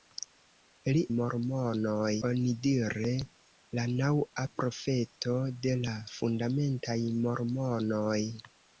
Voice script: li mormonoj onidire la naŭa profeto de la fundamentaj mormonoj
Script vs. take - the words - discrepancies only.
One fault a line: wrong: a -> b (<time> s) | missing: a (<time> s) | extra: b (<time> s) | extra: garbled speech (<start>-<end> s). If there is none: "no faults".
no faults